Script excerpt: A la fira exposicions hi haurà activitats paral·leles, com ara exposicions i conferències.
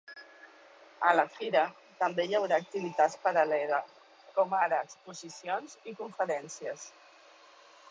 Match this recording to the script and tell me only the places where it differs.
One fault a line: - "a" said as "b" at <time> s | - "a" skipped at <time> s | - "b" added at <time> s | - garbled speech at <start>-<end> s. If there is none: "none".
- "exposicions" said as "també" at 2.0 s